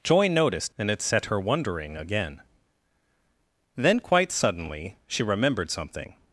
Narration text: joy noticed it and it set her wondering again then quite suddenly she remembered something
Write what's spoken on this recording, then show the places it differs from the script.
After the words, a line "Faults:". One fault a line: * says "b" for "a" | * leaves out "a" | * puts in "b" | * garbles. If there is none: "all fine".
joy noticed and it set her wondering again then quite suddenly she remembered something
Faults:
* leaves out "it"